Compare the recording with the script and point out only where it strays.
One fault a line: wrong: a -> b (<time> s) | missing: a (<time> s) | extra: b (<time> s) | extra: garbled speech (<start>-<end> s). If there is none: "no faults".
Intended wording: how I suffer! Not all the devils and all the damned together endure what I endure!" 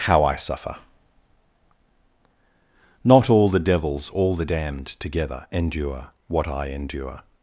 missing: and (4.1 s)